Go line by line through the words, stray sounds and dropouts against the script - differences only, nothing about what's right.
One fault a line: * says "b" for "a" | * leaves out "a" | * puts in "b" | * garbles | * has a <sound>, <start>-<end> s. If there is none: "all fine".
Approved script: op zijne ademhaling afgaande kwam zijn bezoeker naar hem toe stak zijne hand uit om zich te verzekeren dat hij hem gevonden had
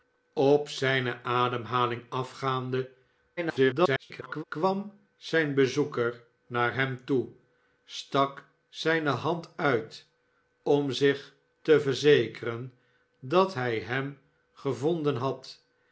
* garbles